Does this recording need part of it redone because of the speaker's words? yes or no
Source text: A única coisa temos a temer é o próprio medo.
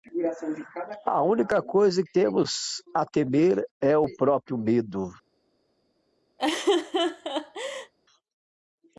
no